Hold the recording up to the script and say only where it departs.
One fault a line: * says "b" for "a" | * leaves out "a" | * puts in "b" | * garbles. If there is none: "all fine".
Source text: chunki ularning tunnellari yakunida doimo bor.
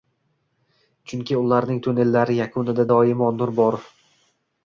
* puts in "nur"